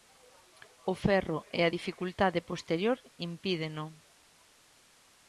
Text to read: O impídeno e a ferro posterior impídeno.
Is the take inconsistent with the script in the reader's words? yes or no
yes